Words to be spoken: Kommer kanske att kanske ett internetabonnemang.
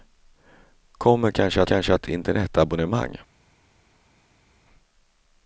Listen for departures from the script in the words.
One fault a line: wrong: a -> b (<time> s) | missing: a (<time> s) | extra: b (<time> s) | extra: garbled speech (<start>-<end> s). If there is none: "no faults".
no faults